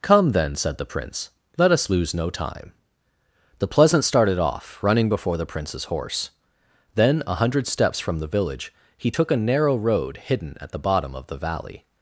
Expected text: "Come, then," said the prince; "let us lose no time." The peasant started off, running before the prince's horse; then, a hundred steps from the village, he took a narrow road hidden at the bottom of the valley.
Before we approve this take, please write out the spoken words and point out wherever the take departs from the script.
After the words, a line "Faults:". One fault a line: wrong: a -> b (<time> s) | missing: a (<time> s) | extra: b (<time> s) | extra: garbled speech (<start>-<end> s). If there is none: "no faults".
"Come, then," said the prince; "let us lose no time." The pleasant started off, running before the prince's horse; then, a hundred steps from the village, he took a narrow road hidden at the bottom of the valley.
Faults:
wrong: peasant -> pleasant (3.7 s)